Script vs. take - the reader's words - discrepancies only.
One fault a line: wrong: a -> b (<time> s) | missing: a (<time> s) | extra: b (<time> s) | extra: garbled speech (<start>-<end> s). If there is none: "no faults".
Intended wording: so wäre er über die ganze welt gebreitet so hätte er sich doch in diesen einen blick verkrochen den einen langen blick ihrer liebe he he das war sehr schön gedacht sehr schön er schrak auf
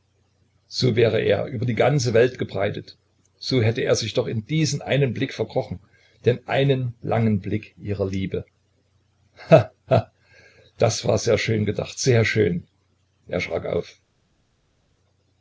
no faults